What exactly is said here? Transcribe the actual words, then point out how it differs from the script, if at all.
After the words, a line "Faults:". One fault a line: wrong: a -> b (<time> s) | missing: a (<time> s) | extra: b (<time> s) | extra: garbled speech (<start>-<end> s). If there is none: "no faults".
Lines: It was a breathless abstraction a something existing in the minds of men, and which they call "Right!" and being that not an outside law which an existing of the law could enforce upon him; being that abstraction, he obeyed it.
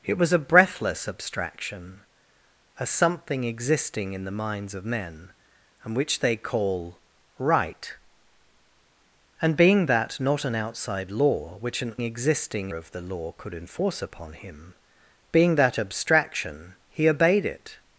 It was a breathless abstraction a something existing in the minds of men, and which they call "Right!" and being that not an outside law which an existing of the law could enforce upon him; being that abstraction, he obeyed it.
Faults:
no faults